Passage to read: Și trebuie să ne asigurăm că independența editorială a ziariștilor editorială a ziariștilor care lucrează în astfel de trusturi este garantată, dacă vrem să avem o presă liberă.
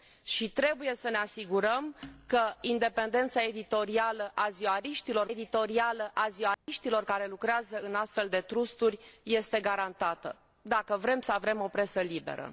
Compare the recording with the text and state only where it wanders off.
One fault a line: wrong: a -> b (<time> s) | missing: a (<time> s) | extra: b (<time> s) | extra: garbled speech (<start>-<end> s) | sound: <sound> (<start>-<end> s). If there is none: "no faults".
sound: dropout (6.5-6.7 s)